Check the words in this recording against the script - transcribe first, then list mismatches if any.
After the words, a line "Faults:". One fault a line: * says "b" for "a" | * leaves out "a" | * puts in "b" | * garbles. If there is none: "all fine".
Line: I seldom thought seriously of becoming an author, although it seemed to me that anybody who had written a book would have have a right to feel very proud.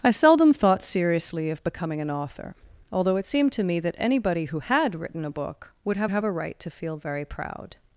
I seldom thought seriously of becoming an author, although it seemed to me that anybody who had written a book would have have a right to feel very proud.
Faults:
all fine